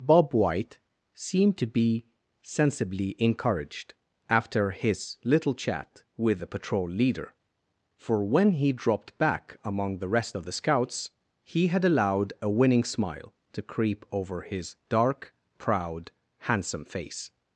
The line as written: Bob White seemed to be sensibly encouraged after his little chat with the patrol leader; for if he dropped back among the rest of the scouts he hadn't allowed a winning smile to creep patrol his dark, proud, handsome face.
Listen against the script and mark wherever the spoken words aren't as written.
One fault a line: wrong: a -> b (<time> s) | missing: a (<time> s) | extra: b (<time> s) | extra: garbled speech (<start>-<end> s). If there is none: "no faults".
wrong: if -> when (8.2 s)
wrong: hadn't -> had (11.7 s)
wrong: patrol -> over (14.1 s)